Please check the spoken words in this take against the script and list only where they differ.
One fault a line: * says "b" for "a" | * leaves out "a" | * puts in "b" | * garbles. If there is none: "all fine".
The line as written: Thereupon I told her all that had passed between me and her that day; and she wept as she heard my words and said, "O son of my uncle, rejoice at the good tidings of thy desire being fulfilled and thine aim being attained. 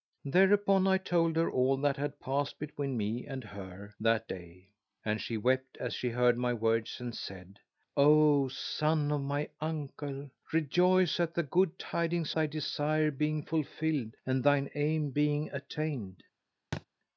* leaves out "of"